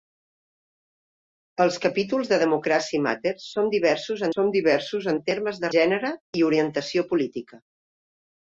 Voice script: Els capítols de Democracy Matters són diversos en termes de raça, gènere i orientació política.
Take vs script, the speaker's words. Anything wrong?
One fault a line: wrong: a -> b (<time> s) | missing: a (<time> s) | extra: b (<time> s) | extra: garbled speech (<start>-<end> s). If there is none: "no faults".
extra: són diversos (4.3 s)
missing: raça (5.7 s)